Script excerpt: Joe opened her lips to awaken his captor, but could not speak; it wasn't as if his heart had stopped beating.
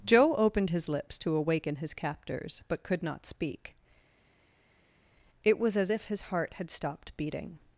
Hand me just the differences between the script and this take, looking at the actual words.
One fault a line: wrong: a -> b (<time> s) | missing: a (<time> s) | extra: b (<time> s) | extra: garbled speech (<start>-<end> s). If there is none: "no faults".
wrong: her -> his (0.7 s)
wrong: captor -> captors (1.9 s)
wrong: wasn't -> was (5.6 s)